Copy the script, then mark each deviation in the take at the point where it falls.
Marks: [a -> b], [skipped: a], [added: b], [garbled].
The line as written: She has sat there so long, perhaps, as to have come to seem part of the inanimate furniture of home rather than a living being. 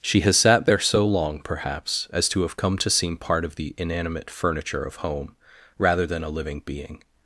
She has sat there so long, perhaps, as to have come to seem part of the inanimate furniture of home rather than a living being.